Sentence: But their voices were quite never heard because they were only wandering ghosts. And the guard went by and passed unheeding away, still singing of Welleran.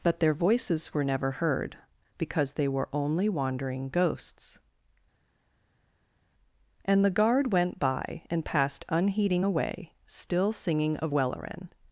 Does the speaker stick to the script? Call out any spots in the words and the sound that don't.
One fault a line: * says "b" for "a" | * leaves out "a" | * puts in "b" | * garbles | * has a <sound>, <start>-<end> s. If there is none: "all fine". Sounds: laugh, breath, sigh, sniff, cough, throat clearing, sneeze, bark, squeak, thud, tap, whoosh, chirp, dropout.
* leaves out "quite"